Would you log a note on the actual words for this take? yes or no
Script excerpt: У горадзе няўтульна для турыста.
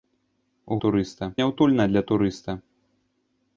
yes